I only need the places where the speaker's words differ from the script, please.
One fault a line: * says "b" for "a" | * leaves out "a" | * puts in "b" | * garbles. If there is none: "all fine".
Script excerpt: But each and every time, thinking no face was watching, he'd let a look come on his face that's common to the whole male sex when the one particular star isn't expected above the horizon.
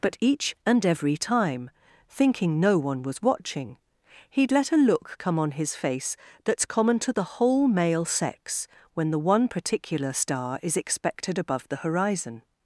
* says "one" for "face"
* says "is" for "isn't"